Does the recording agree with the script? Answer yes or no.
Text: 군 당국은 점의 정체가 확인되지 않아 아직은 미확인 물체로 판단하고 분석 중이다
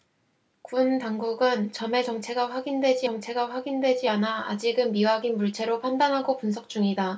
no